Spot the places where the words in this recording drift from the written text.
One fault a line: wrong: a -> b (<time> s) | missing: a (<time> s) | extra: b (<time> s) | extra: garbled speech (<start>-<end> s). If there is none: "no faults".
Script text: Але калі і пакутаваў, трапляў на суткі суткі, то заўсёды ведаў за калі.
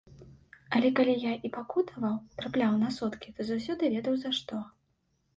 extra: я (1.2 s)
missing: суткі (3.3 s)
wrong: калі -> што (4.4 s)